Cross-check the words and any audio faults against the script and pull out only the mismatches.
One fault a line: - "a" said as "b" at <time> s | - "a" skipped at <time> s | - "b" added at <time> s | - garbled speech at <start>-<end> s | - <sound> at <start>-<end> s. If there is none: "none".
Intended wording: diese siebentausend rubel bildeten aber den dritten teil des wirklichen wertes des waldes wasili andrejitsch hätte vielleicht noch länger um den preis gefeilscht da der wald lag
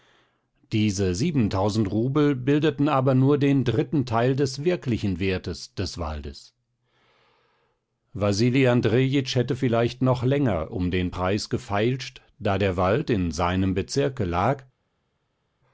- "nur" added at 3.1 s
- "in seinem bezirke" added at 13.1 s